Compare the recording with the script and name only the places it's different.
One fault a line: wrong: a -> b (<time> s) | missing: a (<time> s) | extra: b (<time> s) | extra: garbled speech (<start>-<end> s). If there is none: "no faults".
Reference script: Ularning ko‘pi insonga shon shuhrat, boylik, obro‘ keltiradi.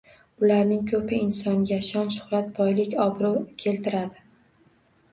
no faults